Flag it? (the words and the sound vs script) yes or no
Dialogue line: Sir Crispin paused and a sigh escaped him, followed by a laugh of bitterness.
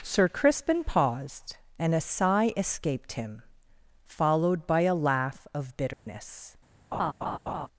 yes